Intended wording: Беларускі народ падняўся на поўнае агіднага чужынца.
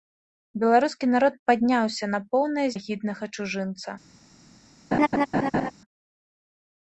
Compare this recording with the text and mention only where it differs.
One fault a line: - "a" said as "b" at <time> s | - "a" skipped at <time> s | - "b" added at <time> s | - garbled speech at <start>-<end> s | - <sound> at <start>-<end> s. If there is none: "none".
- laugh at 4.9-5.7 s